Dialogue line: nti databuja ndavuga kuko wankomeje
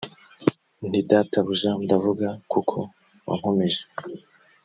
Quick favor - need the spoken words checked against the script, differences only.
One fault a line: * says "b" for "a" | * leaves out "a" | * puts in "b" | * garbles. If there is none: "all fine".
all fine